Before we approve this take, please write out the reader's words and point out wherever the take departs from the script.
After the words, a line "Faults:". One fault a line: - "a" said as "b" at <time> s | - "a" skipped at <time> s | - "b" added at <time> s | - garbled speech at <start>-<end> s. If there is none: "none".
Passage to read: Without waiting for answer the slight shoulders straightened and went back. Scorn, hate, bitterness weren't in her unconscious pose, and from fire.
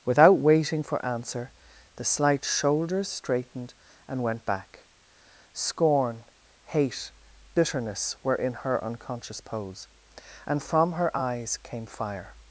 Without waiting for answer the slight shoulders straightened and went back. Scorn, hate, bitterness were in her unconscious pose, and from her eyes came fire.
Faults:
- "weren't" said as "were" at 8.2 s
- "her eyes came" added at 10.9 s